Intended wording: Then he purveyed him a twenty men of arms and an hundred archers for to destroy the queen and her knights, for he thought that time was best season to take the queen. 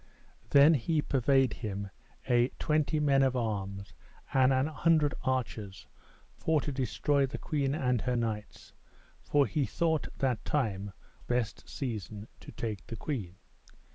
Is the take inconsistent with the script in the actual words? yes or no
yes